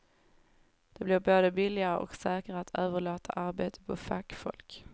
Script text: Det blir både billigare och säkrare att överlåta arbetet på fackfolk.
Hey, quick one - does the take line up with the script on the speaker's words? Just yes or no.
yes